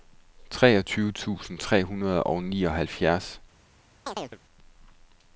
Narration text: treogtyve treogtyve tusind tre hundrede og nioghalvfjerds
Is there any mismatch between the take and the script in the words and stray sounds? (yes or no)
yes